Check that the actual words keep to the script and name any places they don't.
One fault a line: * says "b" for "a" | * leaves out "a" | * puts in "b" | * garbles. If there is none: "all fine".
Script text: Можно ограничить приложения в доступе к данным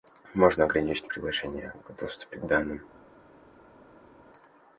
all fine